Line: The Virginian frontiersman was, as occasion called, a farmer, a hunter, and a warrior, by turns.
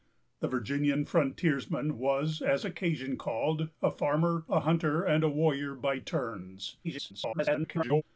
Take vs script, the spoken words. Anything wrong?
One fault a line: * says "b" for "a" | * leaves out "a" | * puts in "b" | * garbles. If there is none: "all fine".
* garbles